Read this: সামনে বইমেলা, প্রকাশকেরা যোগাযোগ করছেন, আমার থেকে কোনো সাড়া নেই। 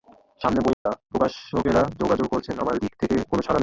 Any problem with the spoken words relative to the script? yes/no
yes